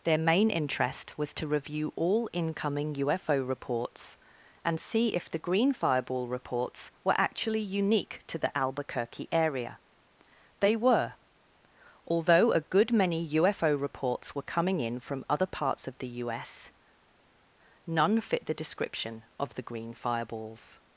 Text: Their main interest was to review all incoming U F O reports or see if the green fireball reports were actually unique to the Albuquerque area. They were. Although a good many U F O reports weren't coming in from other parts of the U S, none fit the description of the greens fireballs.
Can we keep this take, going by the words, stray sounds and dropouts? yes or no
no